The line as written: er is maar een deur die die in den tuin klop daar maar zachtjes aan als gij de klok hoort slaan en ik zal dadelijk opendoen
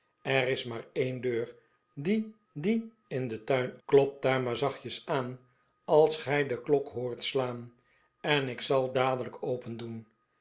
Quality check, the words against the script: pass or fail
pass